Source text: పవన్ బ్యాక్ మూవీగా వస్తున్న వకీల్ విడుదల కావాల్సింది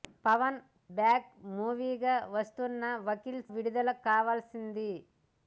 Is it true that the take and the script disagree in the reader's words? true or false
false